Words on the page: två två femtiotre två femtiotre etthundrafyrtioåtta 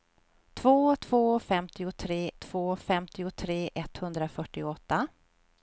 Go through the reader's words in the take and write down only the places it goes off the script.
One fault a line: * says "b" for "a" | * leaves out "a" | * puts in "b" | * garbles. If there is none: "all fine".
all fine